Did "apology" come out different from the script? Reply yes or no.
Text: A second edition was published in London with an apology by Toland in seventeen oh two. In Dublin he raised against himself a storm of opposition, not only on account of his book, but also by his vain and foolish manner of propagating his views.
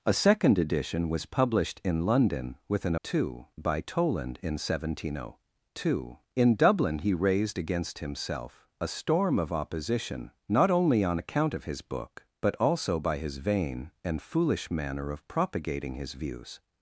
yes